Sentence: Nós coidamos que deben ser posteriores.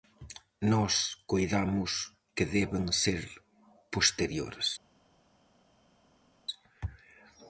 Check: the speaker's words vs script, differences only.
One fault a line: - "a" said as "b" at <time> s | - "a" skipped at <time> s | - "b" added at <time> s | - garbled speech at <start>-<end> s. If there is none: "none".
none